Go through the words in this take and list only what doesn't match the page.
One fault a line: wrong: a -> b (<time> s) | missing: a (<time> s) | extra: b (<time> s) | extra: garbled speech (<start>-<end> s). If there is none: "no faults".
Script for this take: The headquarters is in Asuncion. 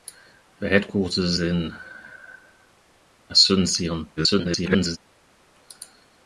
missing: is (1.4 s)
extra: garbled speech (4.2-5.0 s)